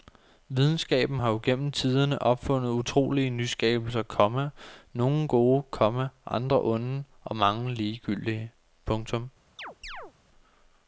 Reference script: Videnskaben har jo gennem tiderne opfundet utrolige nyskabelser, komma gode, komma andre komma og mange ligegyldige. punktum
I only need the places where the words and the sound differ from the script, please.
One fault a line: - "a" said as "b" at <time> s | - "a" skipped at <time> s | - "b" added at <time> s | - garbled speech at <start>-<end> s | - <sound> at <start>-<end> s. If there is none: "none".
- "nogle" added at 4.9 s
- "komma" said as "onde" at 6.6 s
- chirp at 9.6-10.1 s